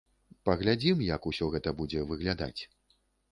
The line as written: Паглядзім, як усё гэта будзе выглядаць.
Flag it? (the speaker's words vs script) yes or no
no